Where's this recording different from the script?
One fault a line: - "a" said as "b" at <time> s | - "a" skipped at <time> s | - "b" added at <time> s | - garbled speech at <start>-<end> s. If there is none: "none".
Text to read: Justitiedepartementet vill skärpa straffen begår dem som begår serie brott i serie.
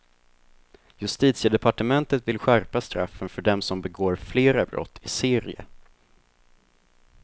- "begår" said as "för" at 3.3 s
- "serie" said as "flera" at 4.2 s